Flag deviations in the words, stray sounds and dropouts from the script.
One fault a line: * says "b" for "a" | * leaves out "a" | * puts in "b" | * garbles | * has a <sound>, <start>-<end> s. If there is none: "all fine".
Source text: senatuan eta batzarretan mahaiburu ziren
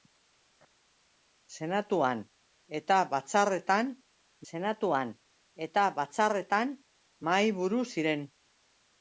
* puts in "senatuan eta batzarretan"